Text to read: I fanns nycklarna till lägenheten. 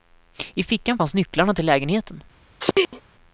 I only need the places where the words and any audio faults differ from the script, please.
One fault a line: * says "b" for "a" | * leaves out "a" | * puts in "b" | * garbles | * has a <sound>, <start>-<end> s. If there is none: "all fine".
* puts in "fickan"
* has a sneeze, 2.6-3.0 s